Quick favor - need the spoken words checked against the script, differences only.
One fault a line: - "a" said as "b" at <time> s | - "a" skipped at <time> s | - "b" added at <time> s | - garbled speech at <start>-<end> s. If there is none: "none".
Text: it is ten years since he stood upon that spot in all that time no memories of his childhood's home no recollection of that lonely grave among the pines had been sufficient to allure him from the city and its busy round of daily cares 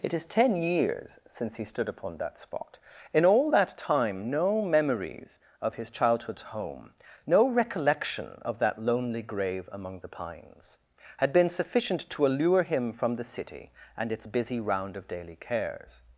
none